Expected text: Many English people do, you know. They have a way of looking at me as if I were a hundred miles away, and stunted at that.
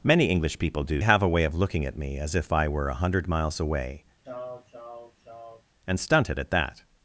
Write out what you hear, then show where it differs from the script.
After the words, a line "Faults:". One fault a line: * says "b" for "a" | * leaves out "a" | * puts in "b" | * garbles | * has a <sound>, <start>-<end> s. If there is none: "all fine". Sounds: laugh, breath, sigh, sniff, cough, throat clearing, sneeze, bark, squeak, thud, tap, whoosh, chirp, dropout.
Many English people do, have a way of looking at me as if I were a hundred miles away, and stunted at that.
Faults:
* leaves out "you know They"
* has a sneeze, 4.2-5.6 s